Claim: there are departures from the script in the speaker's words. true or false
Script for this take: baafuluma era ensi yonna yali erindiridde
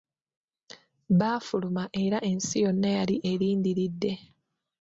false